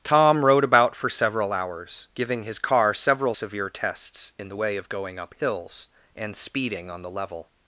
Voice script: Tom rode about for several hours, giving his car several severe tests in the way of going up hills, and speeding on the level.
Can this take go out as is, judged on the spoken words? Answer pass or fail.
pass